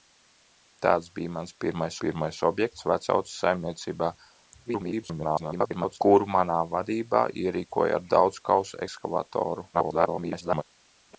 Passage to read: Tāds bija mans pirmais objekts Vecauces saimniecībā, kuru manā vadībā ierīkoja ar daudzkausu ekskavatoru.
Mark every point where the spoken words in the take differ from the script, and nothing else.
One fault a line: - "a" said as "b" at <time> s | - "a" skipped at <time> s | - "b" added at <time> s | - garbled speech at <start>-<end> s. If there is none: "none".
- "pirmais" added at 2.1 s
- garbled speech at 4.6-6.0 s
- garbled speech at 9.7-10.6 s